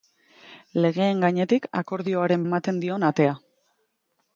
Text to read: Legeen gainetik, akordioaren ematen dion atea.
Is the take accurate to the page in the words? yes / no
yes